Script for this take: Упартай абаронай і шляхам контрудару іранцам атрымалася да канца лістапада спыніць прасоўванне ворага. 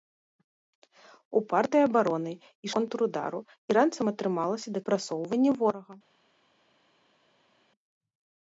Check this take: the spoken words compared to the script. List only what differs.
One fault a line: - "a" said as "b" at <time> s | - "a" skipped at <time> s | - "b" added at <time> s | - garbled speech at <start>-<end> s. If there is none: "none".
- "шляхам" skipped at 2.7 s
- "канца лістапада спыніць" skipped at 4.8 s